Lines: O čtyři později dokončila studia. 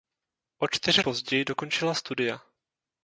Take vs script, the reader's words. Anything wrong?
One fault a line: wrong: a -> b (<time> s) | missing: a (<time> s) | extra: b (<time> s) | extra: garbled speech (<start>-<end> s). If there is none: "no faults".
no faults